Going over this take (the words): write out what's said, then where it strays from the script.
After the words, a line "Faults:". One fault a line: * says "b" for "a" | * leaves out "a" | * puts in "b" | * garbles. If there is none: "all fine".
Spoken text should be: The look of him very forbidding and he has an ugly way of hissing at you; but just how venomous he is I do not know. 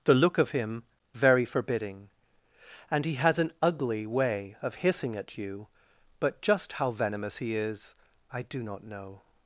The look of him very forbidding and he has an ugly way of hissing at you; but just how venomous he is I do not know.
Faults:
all fine